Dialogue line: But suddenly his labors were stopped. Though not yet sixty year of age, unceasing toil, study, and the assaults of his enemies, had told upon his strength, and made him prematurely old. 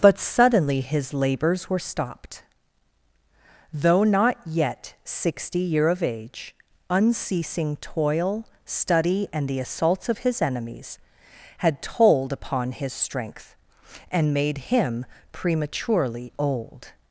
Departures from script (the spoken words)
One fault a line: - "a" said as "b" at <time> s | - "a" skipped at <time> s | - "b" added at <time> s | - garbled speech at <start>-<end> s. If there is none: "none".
none